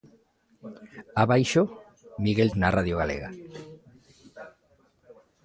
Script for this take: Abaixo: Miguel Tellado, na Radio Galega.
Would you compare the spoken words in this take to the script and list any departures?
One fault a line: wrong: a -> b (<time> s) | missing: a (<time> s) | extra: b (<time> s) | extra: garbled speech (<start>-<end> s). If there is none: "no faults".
missing: Tellado (2.5 s)